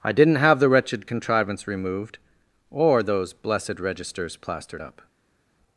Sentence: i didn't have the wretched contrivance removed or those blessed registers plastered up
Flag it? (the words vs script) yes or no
no